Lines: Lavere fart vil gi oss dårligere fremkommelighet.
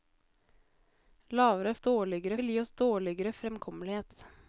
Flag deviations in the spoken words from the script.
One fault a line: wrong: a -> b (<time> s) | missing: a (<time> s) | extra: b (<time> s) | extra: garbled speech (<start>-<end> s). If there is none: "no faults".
wrong: fart -> dårligere (1.8 s)